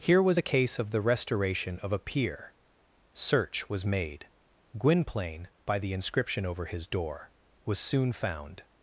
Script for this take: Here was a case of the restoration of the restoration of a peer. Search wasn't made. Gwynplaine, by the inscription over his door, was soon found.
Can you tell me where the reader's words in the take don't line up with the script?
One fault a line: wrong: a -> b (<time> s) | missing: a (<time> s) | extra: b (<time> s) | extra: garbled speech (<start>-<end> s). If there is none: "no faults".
missing: the restoration of (1.9 s)
wrong: wasn't -> was (3.7 s)